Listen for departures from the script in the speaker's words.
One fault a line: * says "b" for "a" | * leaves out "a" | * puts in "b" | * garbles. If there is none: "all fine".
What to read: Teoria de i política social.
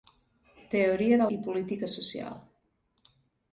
all fine